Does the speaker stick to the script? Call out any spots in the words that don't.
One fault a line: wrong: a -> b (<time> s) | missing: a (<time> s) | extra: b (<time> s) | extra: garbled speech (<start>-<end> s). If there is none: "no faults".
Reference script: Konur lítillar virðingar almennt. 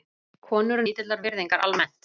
no faults